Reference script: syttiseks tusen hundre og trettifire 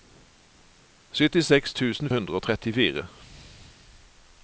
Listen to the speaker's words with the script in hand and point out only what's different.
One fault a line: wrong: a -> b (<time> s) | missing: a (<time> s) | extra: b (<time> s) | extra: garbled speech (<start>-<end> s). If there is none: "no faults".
no faults